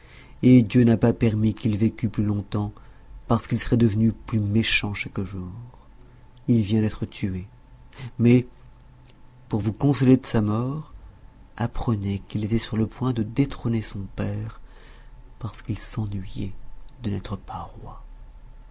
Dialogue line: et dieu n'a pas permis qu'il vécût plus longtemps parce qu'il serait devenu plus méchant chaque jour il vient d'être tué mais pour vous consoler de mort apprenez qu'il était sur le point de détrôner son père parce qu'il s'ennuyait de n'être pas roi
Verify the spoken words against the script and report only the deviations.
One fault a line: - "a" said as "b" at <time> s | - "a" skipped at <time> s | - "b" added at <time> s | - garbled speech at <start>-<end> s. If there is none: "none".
- "sa" added at 10.3 s